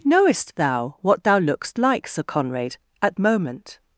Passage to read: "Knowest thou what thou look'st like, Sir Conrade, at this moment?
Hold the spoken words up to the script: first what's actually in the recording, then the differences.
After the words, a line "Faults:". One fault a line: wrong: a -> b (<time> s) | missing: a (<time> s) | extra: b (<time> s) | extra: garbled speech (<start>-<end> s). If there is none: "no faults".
"Knowest thou what thou look'st like, Sir Conrade, at moment?
Faults:
missing: this (3.2 s)